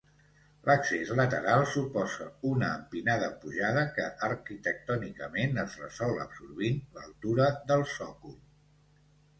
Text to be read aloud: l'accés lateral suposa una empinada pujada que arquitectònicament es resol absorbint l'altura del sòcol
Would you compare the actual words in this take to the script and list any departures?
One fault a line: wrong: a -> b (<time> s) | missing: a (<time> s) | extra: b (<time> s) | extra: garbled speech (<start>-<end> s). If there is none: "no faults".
no faults